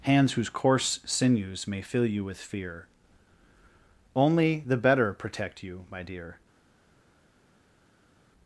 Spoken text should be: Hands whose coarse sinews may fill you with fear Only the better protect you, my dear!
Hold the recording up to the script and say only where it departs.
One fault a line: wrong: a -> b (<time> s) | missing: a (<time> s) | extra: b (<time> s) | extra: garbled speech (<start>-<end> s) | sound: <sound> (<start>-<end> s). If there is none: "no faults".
no faults